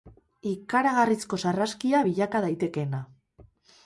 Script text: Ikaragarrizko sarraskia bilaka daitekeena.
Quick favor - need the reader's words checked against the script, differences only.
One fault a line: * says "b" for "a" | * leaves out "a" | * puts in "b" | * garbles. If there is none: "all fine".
all fine